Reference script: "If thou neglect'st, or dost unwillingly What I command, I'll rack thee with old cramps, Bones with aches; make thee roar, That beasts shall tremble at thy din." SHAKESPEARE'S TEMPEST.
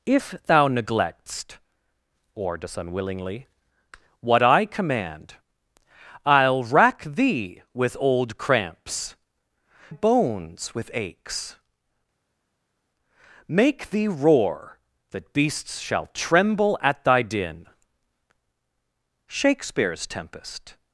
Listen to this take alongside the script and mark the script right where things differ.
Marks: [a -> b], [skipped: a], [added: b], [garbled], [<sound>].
"If thou neglect'st, or dost unwillingly What I command, I'll rack thee with old cramps, Bones with aches; make thee roar, That beasts shall tremble at thy din." SHAKESPEARE'S TEMPEST.